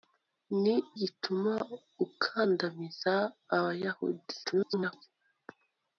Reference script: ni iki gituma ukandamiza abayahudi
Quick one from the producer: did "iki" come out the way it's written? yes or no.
no